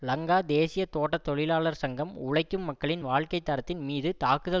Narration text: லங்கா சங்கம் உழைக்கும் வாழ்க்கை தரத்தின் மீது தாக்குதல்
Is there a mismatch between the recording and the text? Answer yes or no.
yes